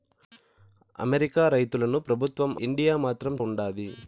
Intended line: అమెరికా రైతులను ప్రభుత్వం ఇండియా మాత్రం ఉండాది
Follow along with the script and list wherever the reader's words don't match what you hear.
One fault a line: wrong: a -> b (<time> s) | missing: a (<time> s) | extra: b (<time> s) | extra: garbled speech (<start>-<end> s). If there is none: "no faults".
no faults